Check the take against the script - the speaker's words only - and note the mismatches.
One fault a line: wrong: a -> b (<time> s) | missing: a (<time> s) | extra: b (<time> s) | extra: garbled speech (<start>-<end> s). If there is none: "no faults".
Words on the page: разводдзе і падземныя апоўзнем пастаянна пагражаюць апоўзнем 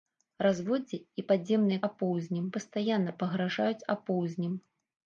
no faults